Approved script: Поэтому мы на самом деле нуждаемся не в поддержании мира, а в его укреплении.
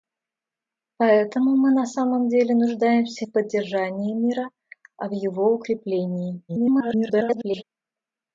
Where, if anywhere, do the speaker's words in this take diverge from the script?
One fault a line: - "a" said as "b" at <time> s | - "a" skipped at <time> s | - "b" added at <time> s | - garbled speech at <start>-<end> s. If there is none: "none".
- "не" skipped at 3.3 s
- garbled speech at 6.5-7.6 s